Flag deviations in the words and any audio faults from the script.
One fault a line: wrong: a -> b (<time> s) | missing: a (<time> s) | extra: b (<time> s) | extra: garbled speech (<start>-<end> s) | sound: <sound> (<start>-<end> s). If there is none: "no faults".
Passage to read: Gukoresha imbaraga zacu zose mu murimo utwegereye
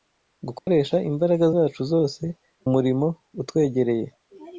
sound: dropout (0.6-0.7 s)
missing: mu (2.2 s)